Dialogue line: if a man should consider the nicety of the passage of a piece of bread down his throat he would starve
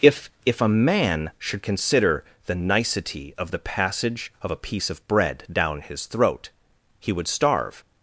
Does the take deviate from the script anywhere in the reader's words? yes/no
yes